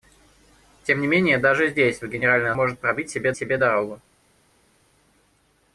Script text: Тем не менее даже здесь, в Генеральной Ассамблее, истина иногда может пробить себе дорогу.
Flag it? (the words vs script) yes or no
yes